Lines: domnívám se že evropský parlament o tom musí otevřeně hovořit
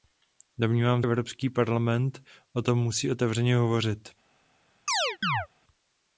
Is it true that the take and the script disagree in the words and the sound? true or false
true